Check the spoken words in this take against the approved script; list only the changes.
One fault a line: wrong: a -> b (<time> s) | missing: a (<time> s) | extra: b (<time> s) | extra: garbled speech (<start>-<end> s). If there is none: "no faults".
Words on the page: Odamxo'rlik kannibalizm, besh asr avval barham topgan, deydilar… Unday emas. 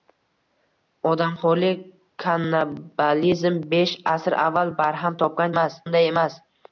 wrong: deydilar -> emas (5.5 s)